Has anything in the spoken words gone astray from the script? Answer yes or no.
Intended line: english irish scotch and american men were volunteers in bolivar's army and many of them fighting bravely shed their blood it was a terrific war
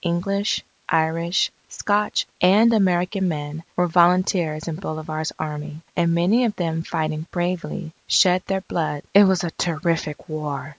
no